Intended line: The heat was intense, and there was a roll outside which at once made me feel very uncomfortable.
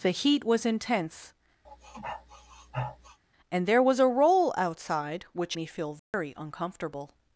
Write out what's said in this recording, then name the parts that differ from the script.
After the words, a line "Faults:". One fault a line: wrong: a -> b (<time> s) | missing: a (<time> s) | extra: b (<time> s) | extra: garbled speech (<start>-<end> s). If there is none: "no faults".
The heat was intense, and there was a roll outside which me feel very uncomfortable.
Faults:
missing: at once made (5.6 s)